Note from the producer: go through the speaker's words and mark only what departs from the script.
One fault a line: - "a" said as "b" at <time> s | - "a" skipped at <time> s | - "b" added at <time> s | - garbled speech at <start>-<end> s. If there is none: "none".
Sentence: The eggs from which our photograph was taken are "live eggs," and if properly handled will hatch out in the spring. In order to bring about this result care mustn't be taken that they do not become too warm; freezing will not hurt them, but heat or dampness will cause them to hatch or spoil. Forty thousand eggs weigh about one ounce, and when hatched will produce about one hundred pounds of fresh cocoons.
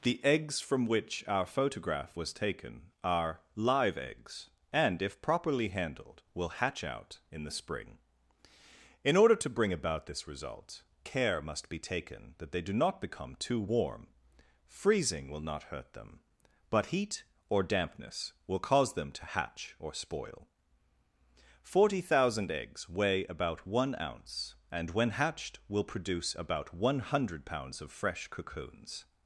- "mustn't" said as "must" at 11.4 s